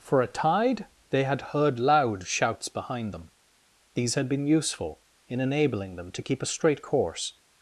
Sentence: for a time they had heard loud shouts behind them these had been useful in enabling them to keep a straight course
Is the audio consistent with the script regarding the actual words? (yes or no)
no